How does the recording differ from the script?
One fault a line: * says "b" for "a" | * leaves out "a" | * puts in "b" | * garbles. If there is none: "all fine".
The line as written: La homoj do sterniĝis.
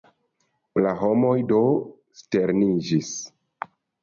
all fine